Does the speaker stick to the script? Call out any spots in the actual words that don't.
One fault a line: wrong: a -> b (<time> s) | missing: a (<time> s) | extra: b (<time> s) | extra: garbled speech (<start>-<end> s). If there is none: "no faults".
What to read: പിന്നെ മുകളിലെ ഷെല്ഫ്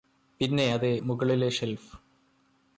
extra: അതെ (0.7 s)